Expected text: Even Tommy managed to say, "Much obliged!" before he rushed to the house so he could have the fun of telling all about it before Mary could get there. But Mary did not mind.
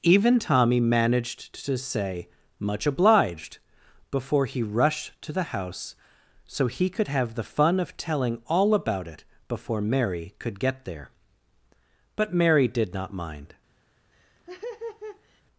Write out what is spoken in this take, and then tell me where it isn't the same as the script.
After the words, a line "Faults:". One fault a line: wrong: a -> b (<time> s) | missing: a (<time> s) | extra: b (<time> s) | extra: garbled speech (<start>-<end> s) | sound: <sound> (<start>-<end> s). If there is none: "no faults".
Even Tommy managed to say, "Much obliged!" before he rushed to the house so he could have the fun of telling all about it before Mary could get there. But Mary did not mind.
Faults:
sound: laugh (14.1-15.4 s)